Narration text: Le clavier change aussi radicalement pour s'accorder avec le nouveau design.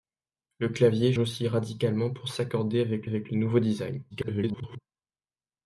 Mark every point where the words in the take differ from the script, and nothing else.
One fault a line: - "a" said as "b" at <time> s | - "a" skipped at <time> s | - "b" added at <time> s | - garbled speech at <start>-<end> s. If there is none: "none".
- "change" skipped at 1.1 s
- "avec" added at 3.0 s
- garbled speech at 4.1-4.8 s